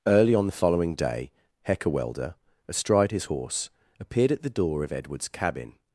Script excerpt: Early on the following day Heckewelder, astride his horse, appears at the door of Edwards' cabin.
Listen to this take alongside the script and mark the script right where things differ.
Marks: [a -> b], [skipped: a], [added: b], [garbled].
Early on the following day Heckewelder, astride his horse, [appears -> appeared] at the door of Edwards' cabin.